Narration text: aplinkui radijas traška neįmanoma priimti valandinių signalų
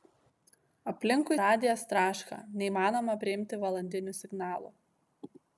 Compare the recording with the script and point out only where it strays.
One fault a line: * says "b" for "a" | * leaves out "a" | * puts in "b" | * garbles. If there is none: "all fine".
all fine